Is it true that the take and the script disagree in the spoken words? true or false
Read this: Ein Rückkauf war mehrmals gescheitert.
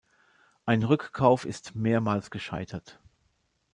true